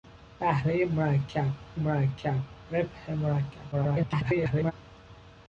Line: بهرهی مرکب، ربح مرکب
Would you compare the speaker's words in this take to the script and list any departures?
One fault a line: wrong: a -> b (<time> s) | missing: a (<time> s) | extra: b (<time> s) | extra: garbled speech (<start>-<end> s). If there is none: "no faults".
extra: مرکب (1.7 s)
extra: garbled speech (3.7-4.7 s)